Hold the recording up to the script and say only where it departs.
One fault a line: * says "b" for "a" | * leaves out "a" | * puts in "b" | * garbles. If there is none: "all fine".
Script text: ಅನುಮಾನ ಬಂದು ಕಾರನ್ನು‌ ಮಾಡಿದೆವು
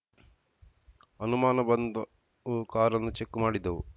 * puts in "ಚೆಕ್"